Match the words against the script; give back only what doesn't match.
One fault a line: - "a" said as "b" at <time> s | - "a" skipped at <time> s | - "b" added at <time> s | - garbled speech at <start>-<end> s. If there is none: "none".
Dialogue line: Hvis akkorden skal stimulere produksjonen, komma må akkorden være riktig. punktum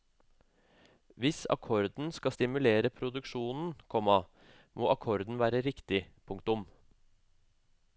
none